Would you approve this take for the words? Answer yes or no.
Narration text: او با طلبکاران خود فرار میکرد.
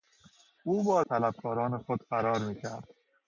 yes